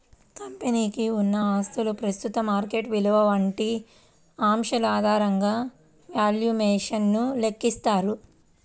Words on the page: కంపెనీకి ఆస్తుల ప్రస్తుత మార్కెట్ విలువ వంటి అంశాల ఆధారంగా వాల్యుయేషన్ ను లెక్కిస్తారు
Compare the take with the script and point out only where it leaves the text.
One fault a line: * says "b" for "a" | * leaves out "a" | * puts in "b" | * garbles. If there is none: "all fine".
* puts in "ఉన్న"